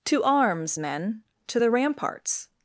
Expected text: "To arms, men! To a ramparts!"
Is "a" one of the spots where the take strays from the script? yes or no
yes